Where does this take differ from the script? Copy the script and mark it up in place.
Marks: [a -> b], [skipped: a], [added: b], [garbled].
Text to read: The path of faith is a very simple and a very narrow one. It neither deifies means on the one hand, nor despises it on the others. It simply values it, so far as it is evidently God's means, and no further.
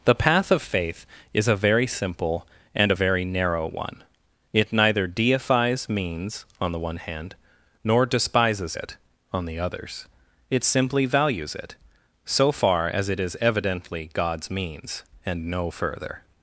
The path of faith is a very simple and a very narrow one. It neither deifies means on the one hand, nor despises it on the others. It simply values it, so far as it is evidently God's means, and no further.